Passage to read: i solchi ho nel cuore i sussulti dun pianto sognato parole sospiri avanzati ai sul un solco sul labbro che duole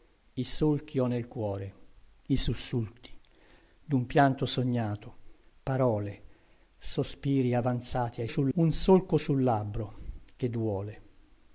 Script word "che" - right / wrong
right